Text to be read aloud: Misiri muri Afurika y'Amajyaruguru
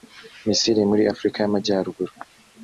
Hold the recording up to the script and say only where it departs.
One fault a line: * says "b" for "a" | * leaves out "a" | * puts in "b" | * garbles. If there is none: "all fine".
all fine